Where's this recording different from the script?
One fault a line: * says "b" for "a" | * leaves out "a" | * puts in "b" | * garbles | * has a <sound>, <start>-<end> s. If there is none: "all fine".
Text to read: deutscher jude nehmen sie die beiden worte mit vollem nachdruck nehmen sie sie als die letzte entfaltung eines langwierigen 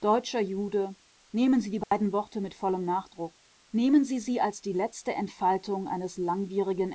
* has a dropout, 1.8-1.9 s